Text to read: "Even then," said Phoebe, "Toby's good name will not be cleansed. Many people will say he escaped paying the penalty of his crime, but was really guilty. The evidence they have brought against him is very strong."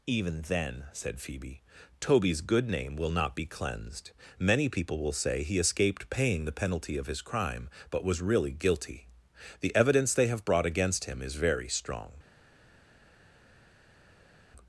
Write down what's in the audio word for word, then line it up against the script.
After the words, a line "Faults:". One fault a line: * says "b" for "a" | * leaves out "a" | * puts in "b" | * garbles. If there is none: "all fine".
"Even then," said Phoebe, "Toby's good name will not be cleansed. Many people will say he escaped paying the penalty of his crime, but was really guilty. The evidence they have brought against him is very strong."
Faults:
all fine